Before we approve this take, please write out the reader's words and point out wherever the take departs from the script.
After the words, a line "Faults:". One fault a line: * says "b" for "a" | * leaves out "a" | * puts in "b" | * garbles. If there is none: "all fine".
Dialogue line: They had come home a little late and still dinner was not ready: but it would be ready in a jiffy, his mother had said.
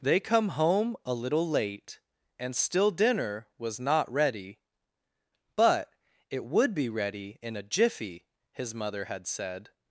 They come home a little late and still dinner was not ready: but it would be ready in a jiffy, his mother had said.
Faults:
* leaves out "had"